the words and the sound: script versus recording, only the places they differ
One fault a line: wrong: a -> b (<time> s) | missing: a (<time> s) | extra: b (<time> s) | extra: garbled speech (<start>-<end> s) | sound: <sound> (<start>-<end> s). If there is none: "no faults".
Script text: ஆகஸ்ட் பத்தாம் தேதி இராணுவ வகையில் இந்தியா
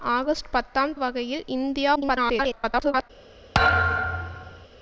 missing: தேதி இராணுவ (0.9 s)
extra: garbled speech (2.0-3.1 s)
sound: thud (3.5-4.7 s)